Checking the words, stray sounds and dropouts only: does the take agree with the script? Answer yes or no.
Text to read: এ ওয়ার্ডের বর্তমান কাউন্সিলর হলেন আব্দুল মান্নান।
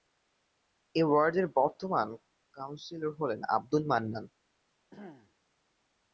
no